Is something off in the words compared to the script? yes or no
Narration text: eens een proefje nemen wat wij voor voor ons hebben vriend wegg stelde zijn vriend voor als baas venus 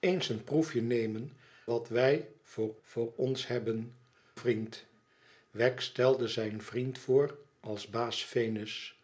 no